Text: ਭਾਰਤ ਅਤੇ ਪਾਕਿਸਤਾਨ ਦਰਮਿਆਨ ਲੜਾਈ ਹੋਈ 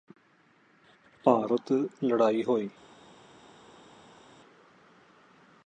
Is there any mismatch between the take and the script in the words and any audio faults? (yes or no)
yes